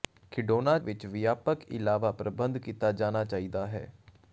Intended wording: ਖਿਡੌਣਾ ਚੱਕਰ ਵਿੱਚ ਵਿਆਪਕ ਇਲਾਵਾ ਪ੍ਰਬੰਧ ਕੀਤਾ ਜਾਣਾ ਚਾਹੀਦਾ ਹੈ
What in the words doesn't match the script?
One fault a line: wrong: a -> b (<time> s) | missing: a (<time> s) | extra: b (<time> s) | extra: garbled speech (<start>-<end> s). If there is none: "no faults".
missing: ਚੱਕਰ (0.8 s)